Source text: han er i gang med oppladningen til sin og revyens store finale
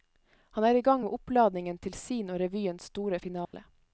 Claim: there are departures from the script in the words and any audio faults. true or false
true